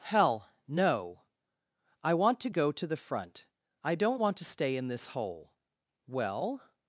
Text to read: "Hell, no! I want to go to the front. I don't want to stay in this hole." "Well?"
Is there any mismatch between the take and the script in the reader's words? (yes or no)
no